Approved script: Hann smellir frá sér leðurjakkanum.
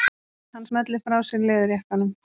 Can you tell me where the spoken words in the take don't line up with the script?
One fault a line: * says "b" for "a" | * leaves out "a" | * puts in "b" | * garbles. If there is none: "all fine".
all fine